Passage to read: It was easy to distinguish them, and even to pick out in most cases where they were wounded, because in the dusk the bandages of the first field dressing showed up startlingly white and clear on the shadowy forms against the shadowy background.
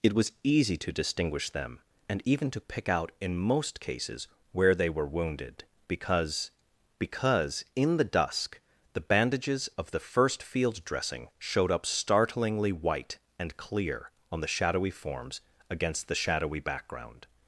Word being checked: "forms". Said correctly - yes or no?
yes